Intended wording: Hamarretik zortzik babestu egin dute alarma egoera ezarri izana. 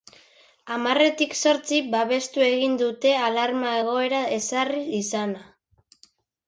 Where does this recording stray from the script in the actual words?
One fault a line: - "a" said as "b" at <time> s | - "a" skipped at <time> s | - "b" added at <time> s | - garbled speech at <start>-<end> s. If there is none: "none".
none